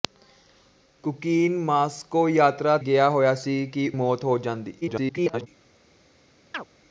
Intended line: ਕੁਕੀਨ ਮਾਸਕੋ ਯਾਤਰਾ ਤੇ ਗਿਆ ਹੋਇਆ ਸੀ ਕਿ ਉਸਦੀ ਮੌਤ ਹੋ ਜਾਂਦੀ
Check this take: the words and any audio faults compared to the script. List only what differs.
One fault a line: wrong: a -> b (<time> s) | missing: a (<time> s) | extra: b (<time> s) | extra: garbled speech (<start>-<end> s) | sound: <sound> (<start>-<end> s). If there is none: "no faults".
missing: ਤੇ (2.8 s)
missing: ਉਸਦੀ (3.9 s)
extra: garbled speech (4.8-5.5 s)
sound: chirp (6.5-6.6 s)